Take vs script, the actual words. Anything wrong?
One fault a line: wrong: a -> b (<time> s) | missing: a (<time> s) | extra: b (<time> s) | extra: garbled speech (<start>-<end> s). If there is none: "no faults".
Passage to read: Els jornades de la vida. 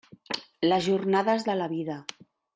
wrong: Els -> Les (0.7 s)